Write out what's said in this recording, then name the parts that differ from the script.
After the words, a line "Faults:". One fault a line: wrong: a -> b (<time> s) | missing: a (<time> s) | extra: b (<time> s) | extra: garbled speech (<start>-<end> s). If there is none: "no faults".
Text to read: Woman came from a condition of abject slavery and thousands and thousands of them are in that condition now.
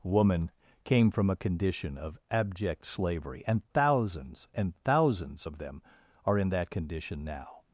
Woman came from a condition of abject slavery and thousands and thousands of them are in that condition now.
Faults:
no faults